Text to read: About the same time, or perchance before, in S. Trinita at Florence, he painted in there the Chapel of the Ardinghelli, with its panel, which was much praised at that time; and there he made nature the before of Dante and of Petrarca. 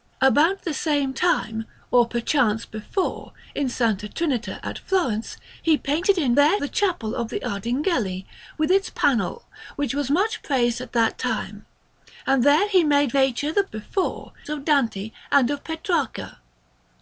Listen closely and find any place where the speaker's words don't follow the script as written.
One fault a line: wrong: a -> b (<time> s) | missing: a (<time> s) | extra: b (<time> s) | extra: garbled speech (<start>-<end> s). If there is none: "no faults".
no faults